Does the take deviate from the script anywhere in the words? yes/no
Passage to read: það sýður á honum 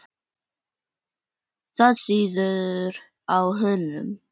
no